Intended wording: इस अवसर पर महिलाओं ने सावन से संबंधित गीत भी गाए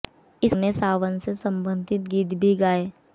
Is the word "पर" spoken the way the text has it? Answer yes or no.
no